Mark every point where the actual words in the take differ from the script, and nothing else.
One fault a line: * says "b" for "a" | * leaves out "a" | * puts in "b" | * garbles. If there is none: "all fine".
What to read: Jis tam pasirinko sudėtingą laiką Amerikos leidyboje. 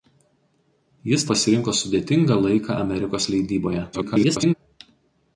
* leaves out "tam"
* garbles